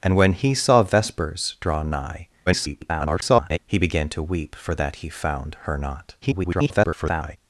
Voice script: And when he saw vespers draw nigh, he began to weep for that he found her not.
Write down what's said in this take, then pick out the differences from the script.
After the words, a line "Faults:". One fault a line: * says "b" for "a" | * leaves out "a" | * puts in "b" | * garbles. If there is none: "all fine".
And when he saw vespers draw nigh, [garbled] he began to weep for that he found her not. [garbled]
Faults:
* garbles
* garbles